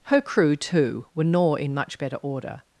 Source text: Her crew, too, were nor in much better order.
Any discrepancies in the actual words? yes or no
no